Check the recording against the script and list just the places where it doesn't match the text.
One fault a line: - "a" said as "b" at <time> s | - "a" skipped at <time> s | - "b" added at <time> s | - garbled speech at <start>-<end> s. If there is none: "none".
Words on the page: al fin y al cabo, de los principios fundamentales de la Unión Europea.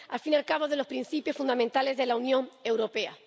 none